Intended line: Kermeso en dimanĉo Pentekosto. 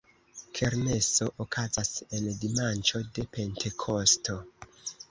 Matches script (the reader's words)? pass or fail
fail